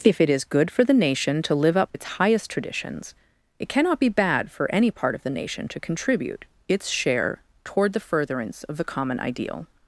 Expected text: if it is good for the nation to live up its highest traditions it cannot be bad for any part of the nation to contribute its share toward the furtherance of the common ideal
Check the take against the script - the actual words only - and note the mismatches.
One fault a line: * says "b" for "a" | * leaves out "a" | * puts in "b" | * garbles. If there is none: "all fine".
all fine